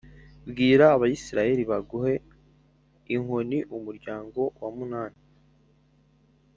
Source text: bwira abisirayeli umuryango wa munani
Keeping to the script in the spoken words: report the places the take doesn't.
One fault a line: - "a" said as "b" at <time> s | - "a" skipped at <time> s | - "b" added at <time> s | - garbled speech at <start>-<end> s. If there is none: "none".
- "baguhe inkoni" added at 1.7 s